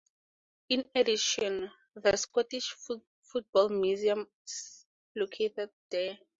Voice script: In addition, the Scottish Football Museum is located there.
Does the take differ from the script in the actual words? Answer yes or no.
no